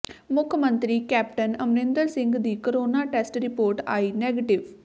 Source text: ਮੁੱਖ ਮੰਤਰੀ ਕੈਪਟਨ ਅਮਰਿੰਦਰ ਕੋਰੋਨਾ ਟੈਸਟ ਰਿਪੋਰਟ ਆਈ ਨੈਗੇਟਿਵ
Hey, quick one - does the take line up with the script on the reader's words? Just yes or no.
no